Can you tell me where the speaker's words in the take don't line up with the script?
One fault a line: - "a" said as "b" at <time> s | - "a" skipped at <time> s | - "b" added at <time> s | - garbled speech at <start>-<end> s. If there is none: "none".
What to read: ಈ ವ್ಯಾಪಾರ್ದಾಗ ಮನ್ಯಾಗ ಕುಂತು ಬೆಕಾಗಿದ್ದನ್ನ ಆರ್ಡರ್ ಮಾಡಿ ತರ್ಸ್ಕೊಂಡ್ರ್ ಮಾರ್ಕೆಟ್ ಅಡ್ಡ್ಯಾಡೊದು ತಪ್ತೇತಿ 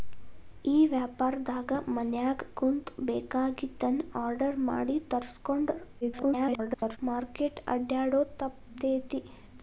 - garbled speech at 6.0-7.0 s